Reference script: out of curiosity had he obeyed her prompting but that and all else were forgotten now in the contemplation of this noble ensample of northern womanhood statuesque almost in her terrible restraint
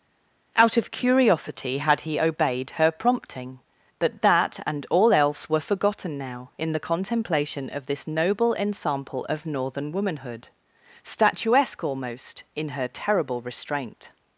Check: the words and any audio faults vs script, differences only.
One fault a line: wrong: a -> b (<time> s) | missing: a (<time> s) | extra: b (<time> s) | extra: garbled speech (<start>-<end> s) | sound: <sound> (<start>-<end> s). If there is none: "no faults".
no faults